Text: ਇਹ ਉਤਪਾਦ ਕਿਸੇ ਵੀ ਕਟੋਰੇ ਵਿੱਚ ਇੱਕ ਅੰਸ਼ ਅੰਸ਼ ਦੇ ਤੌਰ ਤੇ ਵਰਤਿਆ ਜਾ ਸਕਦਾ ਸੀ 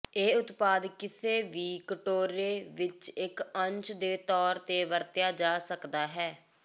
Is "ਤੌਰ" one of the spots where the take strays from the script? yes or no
no